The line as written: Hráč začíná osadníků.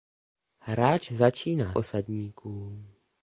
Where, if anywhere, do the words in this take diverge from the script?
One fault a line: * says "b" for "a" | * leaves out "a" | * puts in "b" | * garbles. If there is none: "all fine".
all fine